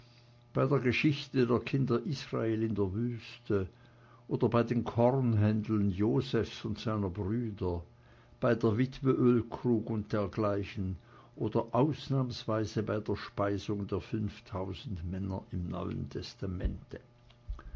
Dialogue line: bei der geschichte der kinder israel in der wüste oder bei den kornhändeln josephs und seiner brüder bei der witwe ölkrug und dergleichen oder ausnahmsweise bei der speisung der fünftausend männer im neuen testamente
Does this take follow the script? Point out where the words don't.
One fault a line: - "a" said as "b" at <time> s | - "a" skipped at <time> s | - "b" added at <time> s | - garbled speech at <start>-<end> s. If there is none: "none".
none